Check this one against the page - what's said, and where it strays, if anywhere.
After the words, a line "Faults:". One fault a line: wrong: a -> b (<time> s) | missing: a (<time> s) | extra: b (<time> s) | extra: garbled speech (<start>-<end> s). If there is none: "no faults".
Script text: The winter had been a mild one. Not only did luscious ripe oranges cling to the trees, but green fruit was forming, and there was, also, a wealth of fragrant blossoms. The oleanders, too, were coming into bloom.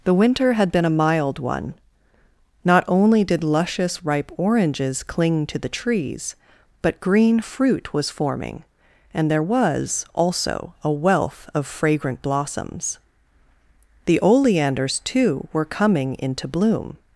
The winter had been a mild one. Not only did luscious ripe oranges cling to the trees, but green fruit was forming, and there was, also, a wealth of fragrant blossoms. The oleanders, too, were coming into bloom.
Faults:
no faults